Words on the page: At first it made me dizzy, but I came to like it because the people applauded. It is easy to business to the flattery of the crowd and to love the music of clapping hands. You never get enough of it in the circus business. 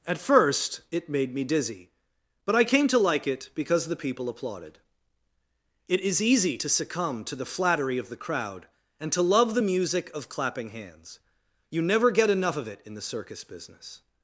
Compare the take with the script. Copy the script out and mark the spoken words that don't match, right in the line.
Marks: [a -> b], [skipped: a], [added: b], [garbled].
At first it made me dizzy, but I came to like it because the people applauded. It is easy to [business -> succumb] to the flattery of the crowd and to love the music of clapping hands. You never get enough of it in the circus business.